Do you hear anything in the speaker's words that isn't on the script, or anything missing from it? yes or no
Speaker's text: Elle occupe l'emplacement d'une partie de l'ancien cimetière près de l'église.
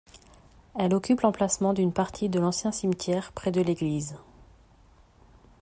no